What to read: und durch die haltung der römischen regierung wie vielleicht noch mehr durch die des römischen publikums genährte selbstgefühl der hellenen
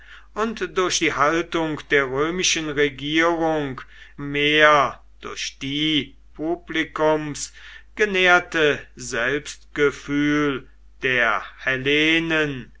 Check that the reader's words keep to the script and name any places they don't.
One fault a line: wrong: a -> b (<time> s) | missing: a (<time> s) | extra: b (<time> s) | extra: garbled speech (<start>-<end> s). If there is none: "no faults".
missing: wie vielleicht noch (3.8 s)
missing: des römischen (6.2 s)